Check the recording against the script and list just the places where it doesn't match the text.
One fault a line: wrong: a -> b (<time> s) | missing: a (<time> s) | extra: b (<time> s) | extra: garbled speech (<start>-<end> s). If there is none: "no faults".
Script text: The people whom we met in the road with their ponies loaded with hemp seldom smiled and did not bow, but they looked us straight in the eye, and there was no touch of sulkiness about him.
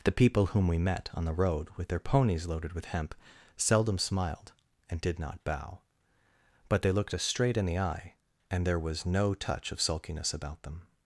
wrong: in -> on (1.1 s)
wrong: him -> them (10.6 s)